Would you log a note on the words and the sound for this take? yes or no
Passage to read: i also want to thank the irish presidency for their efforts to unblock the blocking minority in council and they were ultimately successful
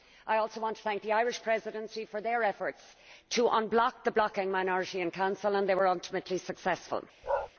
yes